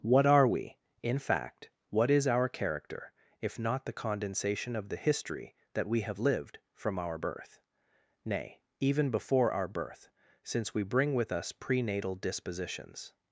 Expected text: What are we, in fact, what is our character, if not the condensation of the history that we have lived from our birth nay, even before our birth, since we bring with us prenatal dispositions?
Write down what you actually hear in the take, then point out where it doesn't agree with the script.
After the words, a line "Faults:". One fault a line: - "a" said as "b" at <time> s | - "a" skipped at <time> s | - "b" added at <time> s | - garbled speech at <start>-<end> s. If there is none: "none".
What are we, in fact, what is our character, if not the condensation of the history that we have lived from our birth nay, even before our birth, since we bring with us prenatal dispositions?
Faults:
none